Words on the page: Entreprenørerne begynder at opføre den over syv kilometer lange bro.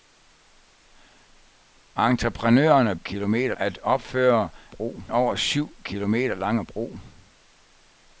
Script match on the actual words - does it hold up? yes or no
no